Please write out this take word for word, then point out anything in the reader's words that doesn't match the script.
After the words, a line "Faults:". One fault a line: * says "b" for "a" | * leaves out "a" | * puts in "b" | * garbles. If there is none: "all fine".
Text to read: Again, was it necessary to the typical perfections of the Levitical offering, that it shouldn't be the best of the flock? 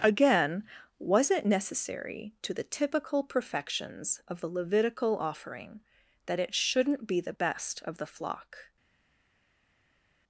Again, was it necessary to the typical perfections of the Levitical offering, that it shouldn't be the best of the flock?
Faults:
all fine